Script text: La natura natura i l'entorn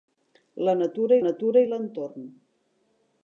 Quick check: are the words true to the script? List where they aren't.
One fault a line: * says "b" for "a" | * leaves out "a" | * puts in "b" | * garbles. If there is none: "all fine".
all fine